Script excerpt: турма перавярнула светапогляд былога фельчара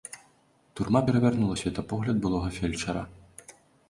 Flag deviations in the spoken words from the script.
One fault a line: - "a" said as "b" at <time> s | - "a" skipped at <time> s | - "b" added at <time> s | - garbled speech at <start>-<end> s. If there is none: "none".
none